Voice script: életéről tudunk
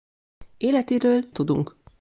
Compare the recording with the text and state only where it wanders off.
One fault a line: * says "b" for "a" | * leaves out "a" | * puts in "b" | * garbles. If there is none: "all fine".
all fine